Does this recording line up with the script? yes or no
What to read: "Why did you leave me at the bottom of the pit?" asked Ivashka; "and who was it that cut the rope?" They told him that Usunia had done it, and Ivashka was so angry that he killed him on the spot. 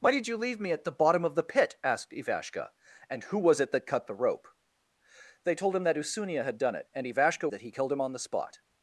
no